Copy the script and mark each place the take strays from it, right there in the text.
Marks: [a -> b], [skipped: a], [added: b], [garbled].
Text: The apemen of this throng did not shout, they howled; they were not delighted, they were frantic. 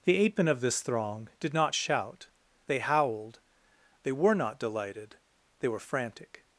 The apemen of this throng did not shout, they howled; they were not delighted, they were frantic.